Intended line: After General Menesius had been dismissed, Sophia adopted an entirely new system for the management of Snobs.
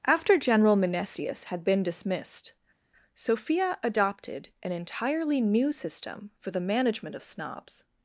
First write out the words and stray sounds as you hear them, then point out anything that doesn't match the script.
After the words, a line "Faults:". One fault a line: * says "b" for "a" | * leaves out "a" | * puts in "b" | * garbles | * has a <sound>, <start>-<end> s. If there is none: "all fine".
After General Menesius had been dismissed, Sophia adopted an entirely new system for the management of Snobs.
Faults:
all fine